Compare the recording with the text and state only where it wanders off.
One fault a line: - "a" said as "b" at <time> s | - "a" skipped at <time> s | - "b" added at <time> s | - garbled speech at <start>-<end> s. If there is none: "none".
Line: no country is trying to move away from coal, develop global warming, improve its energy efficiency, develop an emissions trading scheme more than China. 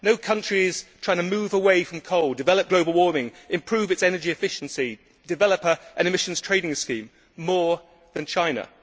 none